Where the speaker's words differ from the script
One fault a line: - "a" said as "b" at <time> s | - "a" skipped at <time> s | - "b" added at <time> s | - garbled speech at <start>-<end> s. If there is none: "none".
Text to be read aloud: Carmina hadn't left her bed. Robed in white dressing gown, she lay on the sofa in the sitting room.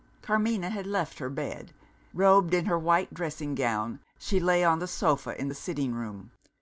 - "hadn't" said as "had" at 0.7 s
- "her" added at 2.6 s